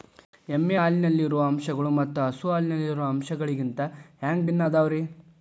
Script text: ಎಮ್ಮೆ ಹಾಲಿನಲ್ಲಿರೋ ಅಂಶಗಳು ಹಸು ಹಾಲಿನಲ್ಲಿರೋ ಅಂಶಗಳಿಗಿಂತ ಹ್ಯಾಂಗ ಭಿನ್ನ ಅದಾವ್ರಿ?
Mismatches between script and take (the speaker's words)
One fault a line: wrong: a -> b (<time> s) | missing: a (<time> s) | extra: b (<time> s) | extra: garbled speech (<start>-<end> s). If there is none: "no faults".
extra: ಮತ್ತ (2.0 s)